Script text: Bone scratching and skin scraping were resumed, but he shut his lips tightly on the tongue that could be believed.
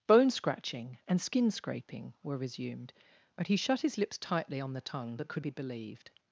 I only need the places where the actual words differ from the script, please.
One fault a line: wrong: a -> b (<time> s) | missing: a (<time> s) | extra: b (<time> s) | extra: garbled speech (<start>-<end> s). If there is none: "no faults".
no faults